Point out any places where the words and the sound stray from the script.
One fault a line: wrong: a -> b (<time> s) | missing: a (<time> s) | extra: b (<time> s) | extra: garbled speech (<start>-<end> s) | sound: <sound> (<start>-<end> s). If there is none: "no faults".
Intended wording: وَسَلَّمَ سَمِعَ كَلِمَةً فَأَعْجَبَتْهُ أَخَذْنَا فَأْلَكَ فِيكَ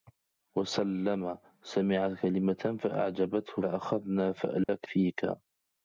sound: dropout (4.6-4.7 s)